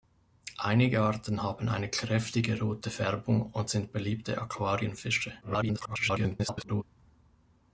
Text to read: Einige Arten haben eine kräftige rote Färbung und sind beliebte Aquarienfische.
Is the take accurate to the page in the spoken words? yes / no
no